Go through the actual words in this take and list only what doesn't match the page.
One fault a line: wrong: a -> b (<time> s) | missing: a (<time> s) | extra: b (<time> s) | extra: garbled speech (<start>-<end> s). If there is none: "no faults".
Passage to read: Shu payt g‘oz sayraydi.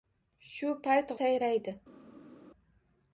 missing: g‘oz (1.1 s)